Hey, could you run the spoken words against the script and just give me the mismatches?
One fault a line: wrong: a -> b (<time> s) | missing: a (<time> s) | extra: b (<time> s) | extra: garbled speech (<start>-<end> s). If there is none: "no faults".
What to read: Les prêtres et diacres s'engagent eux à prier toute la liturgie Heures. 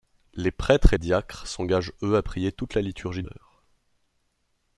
no faults